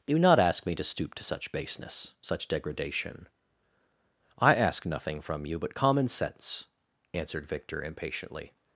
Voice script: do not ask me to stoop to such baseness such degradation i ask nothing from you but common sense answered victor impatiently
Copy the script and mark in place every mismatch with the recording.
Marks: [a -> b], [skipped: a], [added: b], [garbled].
do not ask me to stoop to such baseness such degradation i ask nothing from you but common sense answered victor impatiently